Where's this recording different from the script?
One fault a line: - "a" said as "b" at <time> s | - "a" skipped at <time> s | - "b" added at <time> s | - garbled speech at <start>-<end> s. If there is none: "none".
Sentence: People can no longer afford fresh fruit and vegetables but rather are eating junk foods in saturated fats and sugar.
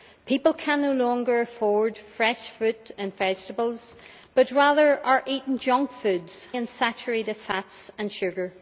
none